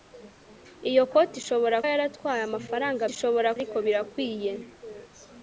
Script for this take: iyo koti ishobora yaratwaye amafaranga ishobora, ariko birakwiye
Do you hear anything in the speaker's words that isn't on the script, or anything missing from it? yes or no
no